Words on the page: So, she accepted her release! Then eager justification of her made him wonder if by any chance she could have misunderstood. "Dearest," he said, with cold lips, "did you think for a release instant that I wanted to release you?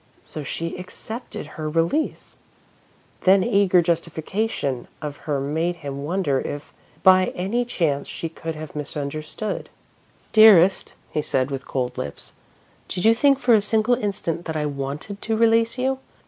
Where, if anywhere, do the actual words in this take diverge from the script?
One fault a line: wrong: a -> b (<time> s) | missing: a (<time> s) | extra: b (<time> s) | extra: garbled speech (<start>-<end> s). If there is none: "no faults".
wrong: release -> single (13.6 s)